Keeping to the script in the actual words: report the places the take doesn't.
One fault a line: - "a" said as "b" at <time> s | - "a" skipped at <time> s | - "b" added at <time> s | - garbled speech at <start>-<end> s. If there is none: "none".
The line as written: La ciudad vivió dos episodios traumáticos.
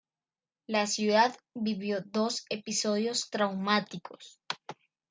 none